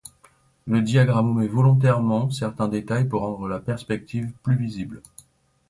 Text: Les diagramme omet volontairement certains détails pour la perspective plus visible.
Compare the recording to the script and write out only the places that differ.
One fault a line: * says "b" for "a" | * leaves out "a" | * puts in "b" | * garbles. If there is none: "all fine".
* says "Le" for "Les"
* puts in "rendre"